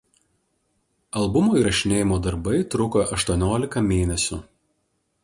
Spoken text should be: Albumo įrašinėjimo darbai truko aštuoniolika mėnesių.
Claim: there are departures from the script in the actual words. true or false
false